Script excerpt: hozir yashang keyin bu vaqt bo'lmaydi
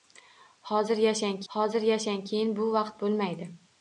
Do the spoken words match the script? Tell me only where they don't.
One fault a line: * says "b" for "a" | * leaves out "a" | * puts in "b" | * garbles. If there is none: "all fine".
* puts in "hozir yashang"